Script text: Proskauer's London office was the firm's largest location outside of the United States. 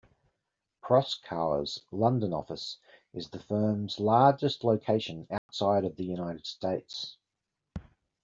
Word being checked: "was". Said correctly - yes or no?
no